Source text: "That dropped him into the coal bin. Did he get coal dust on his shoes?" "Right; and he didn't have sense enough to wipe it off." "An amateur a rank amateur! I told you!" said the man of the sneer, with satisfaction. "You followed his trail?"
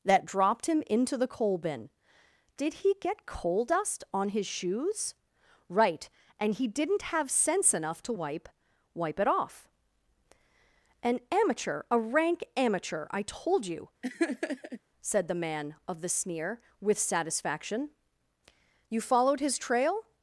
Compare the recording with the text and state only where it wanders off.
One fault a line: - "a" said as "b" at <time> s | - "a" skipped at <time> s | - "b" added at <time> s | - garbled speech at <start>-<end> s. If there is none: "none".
- "wipe" added at 8.9 s